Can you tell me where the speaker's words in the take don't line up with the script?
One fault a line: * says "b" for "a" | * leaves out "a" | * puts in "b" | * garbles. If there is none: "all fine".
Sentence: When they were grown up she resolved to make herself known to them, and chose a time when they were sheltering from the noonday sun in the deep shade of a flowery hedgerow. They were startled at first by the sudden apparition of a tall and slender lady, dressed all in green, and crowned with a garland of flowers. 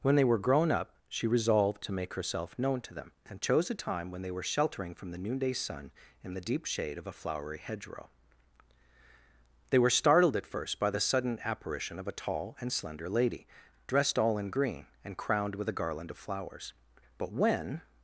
* puts in "But when"